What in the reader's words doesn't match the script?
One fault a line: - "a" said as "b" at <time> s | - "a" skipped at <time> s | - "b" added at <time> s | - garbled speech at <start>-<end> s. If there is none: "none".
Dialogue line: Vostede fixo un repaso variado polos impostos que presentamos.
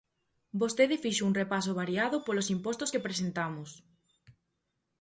none